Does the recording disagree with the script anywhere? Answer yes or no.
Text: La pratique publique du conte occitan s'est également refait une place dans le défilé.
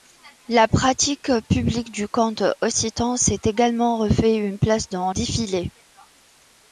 yes